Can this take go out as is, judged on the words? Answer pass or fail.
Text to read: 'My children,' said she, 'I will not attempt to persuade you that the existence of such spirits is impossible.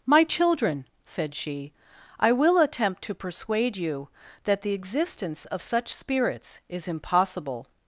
fail